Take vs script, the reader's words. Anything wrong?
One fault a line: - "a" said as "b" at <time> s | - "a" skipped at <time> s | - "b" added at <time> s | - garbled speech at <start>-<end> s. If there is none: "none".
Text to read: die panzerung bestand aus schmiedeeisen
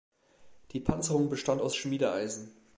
none